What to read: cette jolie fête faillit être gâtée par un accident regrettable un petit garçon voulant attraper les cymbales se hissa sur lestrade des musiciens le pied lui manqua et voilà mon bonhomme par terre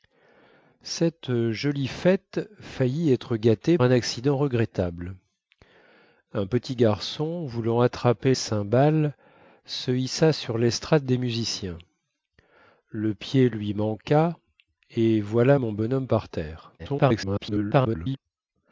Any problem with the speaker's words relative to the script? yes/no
yes